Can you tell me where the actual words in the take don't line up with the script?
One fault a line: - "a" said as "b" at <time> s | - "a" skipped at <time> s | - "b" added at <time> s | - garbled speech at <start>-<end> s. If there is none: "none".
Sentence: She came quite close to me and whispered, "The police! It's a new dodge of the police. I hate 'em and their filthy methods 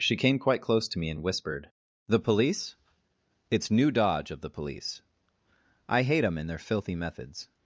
- "a" skipped at 3.7 s